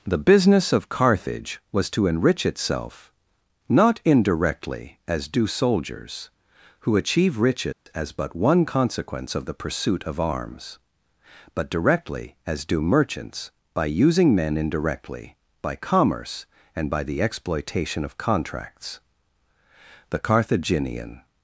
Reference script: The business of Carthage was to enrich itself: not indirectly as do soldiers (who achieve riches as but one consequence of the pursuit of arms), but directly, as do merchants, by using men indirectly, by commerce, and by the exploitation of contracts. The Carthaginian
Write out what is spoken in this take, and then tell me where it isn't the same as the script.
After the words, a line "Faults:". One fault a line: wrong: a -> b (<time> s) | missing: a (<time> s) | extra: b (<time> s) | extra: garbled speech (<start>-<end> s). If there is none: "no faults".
The business of Carthage was to enrich itself: not indirectly as do soldiers (who achieve riches as but one consequence of the pursuit of arms), but directly, as do merchants, by using men indirectly, by commerce, and by the exploitation of contracts. The Carthaginian
Faults:
no faults